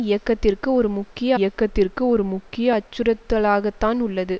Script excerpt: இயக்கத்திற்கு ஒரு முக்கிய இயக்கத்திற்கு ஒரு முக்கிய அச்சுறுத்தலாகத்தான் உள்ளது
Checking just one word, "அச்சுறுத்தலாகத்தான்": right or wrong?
right